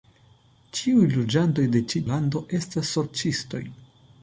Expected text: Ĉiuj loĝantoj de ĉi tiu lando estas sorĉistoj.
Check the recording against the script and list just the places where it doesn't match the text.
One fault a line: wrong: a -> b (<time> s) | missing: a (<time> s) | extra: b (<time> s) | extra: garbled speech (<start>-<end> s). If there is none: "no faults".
missing: tiu (2.0 s)